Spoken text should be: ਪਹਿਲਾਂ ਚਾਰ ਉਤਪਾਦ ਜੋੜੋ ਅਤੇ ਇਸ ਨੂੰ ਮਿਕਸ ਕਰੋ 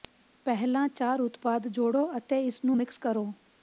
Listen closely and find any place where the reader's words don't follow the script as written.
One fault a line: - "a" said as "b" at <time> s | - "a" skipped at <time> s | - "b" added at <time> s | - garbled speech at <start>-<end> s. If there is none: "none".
none